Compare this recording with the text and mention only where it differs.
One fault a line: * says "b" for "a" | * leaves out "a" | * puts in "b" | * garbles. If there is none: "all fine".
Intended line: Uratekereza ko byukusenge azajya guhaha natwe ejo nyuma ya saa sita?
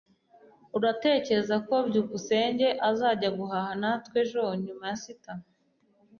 * leaves out "saa"